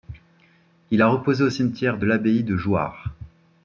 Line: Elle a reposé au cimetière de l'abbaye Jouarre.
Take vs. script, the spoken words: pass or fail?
fail